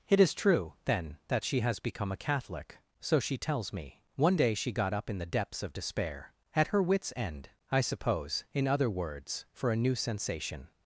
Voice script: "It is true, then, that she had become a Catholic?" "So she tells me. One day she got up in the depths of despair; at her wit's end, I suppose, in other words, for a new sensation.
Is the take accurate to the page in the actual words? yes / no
no